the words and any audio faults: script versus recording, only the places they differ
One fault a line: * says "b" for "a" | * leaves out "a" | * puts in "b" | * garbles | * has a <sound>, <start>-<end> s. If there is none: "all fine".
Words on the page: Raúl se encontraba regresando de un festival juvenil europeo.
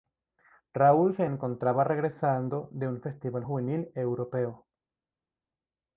all fine